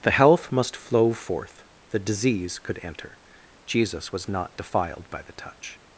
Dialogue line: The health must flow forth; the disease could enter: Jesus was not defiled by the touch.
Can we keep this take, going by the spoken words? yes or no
yes